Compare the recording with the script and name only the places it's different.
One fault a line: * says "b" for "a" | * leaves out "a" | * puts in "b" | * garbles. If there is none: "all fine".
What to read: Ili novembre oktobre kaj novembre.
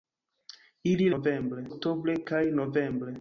all fine